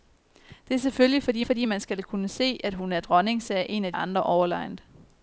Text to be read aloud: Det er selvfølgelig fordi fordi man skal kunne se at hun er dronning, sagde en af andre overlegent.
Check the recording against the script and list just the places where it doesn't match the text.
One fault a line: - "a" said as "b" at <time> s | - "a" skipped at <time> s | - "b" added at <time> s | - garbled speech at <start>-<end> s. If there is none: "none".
none